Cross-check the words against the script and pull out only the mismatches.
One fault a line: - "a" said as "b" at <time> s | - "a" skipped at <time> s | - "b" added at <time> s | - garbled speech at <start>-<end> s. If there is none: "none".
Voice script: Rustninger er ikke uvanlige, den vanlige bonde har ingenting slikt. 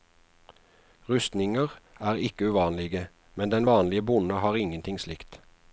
- "men" added at 3.4 s